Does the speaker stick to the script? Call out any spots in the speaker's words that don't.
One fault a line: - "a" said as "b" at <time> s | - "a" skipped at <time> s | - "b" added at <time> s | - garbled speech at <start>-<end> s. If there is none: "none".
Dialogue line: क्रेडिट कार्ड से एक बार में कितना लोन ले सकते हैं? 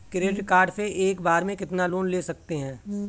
none